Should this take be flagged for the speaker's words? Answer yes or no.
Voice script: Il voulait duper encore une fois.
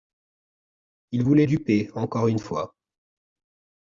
no